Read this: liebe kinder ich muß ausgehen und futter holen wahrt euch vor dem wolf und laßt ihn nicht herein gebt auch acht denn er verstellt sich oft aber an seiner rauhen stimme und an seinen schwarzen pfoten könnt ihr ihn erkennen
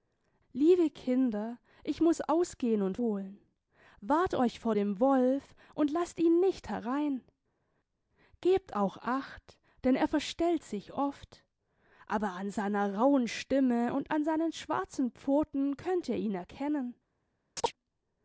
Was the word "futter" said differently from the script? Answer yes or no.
yes